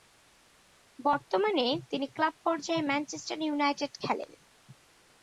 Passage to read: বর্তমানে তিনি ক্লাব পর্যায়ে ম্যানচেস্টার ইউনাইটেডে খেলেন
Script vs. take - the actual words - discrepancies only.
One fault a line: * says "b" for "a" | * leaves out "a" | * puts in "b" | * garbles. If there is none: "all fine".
all fine